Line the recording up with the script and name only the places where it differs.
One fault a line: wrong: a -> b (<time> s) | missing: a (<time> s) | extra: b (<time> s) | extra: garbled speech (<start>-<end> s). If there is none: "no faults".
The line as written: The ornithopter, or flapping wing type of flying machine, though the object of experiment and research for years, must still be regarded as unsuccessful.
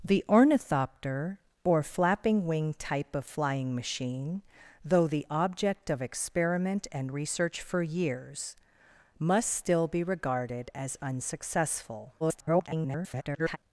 extra: garbled speech (12.2-13.6 s)